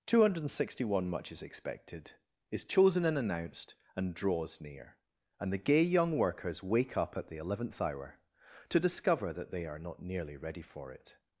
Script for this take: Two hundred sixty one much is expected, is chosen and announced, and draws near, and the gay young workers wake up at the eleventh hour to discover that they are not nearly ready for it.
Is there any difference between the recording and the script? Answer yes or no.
no